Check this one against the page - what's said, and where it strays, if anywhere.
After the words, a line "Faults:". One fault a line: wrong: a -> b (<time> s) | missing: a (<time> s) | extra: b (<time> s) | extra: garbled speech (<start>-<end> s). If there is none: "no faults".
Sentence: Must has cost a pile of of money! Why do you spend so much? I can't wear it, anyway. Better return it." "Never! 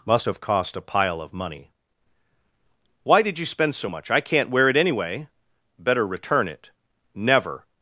Must have cost a pile of money! Why did you spend so much? I can't wear it, anyway. Better return it." "Never!
Faults:
wrong: has -> have (0.2 s)
missing: of (1.3 s)
wrong: do -> did (3.2 s)